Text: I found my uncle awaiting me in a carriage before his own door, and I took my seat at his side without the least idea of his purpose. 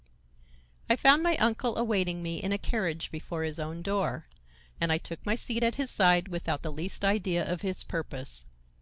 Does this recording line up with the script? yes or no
yes